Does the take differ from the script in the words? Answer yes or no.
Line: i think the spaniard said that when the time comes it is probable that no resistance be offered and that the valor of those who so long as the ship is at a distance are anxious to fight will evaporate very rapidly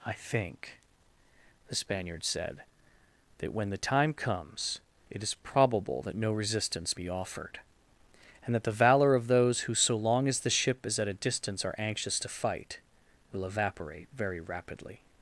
no